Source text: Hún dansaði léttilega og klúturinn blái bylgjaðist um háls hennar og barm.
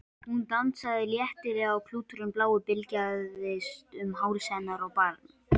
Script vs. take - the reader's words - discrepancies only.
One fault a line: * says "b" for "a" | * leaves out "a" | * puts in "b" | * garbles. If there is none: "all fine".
all fine